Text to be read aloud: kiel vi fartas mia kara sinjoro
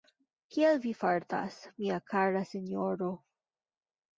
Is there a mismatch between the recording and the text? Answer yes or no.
no